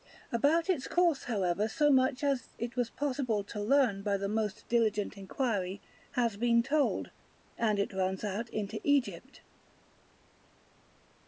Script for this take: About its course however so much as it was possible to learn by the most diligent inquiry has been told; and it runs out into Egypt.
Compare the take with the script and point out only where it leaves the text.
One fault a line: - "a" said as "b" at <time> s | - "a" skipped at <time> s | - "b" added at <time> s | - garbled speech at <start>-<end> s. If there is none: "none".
none